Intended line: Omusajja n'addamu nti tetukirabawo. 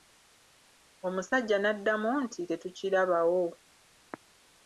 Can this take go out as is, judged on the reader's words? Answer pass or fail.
pass